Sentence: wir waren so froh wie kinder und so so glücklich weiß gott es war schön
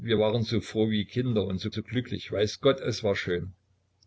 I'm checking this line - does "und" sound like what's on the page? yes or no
yes